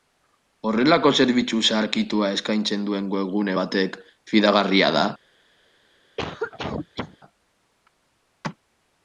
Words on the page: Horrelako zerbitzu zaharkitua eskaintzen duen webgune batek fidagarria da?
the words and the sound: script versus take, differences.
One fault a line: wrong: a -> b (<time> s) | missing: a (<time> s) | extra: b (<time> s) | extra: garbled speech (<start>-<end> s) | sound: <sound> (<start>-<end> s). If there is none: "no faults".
sound: cough (6.2-7.2 s)